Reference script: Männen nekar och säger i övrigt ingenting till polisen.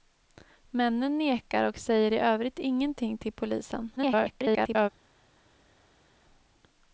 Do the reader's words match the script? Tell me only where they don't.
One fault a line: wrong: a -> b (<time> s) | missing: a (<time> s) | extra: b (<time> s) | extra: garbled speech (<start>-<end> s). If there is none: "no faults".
extra: garbled speech (4.0-4.9 s)